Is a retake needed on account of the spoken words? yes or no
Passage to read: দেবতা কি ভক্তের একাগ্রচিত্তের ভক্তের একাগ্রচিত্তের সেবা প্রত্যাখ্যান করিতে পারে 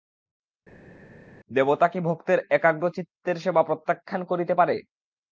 yes